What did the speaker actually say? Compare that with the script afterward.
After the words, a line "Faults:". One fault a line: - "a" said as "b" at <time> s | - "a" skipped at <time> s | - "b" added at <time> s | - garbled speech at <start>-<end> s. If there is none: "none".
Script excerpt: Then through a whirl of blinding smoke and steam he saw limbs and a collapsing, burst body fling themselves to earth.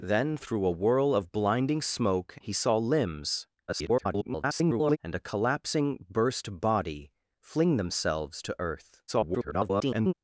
Then through a whirl of blinding smoke he saw limbs [garbled] and a collapsing, burst body fling themselves to earth. [garbled]
Faults:
- "and steam" skipped at 2.4 s
- garbled speech at 3.7-5.0 s
- garbled speech at 9.1-10.1 s